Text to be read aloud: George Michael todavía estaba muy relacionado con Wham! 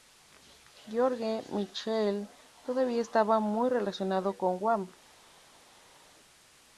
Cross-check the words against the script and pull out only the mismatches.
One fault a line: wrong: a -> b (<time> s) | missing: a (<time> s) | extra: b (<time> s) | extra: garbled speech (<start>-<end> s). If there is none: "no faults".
no faults